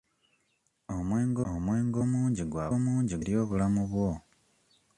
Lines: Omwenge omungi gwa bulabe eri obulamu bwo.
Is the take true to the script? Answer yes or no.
no